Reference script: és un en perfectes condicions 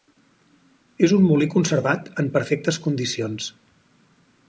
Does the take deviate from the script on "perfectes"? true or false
false